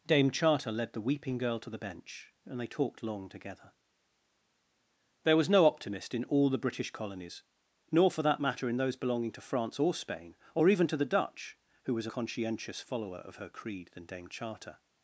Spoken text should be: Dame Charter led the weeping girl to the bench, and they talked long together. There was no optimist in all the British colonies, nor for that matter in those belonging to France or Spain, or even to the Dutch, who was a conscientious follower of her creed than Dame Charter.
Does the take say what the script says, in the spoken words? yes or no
yes